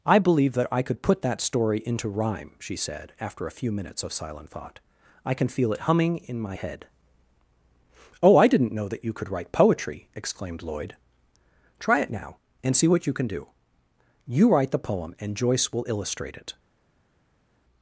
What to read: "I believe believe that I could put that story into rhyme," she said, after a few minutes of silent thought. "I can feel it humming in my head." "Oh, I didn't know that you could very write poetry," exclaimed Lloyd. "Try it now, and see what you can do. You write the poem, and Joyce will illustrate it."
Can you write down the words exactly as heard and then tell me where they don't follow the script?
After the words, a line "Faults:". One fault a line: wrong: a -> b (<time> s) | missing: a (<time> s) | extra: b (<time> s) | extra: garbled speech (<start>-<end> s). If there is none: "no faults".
"I believe that I could put that story into rhyme," she said, after a few minutes of silent thought. "I can feel it humming in my head." "Oh, I didn't know that you could write poetry," exclaimed Lloyd. "Try it now, and see what you can do. You write the poem, and Joyce will illustrate it."
Faults:
missing: believe (0.5 s)
missing: very (9.3 s)